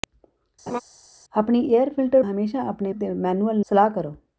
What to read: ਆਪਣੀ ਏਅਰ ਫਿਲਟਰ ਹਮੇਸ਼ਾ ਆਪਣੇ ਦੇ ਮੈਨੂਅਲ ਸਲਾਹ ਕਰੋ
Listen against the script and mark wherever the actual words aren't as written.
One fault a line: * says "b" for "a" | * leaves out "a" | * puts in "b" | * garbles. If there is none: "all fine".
all fine